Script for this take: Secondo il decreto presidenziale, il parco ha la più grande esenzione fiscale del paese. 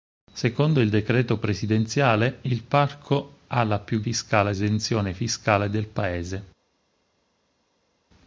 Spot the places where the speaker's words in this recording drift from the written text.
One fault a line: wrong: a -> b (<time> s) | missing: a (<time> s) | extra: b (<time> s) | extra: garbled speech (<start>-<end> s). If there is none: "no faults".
wrong: grande -> fiscale (4.0 s)